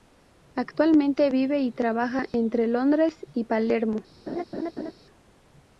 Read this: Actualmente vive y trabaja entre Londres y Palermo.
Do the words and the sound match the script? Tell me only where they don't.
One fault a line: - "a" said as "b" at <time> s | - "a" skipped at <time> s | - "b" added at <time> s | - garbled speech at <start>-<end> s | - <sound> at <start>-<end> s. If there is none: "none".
- laugh at 4.3-4.9 s